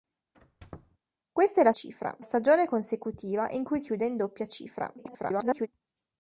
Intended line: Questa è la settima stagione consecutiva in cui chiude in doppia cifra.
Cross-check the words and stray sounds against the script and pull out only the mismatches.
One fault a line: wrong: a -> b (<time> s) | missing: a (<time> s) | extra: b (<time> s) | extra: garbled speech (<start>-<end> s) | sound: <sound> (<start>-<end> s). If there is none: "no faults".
sound: squeak (0.3-1.0 s)
wrong: settima -> cifra (1.7 s)
extra: garbled speech (5.0-5.7 s)